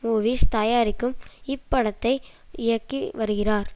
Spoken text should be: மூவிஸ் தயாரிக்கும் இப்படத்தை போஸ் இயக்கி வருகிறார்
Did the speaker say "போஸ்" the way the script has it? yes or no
no